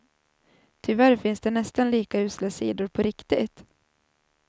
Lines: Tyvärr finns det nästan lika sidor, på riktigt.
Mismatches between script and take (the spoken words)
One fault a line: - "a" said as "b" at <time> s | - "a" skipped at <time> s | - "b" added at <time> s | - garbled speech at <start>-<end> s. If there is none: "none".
- "usla" added at 2.2 s